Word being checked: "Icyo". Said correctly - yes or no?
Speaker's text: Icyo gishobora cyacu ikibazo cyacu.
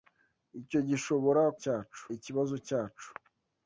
yes